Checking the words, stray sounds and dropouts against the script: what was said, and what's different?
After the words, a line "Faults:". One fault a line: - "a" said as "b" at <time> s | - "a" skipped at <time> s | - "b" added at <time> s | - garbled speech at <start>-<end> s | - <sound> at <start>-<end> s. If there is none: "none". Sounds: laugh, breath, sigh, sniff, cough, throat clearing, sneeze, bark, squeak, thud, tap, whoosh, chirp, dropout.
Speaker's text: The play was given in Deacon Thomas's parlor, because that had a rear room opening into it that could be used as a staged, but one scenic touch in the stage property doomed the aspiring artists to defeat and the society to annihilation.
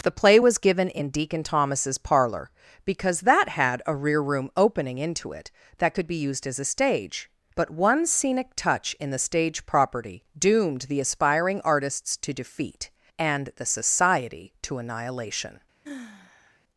The play was given in Deacon Thomas's parlor, because that had a rear room opening into it that could be used as a stage, but one scenic touch in the stage property doomed the aspiring artists to defeat and the society to annihilation.
Faults:
- "staged" said as "stage" at 6.7 s
- sigh at 15.8-16.6 s